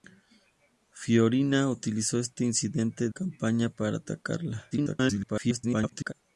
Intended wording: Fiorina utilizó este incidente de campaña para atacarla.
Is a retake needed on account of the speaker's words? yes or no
yes